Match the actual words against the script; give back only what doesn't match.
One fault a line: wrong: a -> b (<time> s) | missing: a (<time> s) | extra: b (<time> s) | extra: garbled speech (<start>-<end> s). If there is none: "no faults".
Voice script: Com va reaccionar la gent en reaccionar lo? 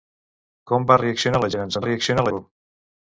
no faults